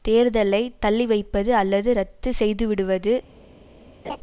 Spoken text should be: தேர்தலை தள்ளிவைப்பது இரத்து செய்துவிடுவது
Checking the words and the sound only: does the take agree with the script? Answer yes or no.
no